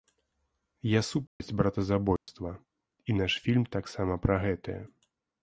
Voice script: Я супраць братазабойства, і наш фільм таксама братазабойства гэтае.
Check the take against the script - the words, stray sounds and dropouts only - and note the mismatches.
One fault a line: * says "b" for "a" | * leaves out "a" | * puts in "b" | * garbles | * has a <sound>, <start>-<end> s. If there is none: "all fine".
* has a dropout, 1.3-1.4 s
* has a dropout, 2.2-2.3 s
* says "пра" for "братазабойства"